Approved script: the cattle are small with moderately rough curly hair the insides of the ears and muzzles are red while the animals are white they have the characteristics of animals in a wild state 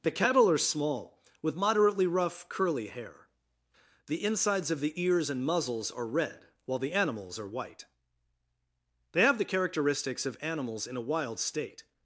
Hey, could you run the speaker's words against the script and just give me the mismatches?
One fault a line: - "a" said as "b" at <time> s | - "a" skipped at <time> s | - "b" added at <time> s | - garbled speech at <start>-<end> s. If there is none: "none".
none